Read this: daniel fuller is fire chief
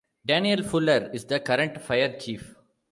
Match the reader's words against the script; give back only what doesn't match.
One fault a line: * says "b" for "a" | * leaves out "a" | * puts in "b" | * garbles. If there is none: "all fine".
* puts in "the current"